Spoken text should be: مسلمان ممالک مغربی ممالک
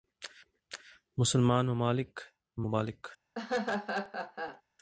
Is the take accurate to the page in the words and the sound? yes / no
no